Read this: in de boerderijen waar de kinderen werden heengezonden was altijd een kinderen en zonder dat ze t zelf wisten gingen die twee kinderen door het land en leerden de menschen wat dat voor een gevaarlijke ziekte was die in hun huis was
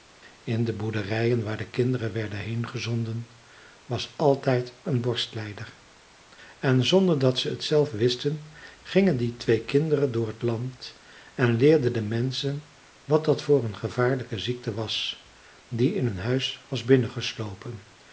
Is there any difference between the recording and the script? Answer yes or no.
yes